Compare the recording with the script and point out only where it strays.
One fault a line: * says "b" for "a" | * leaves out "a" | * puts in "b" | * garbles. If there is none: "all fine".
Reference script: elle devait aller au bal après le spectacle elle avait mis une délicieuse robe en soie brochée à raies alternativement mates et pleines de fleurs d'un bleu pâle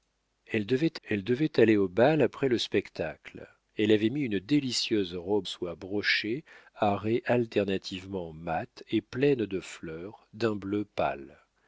* puts in "elle devait"
* leaves out "en"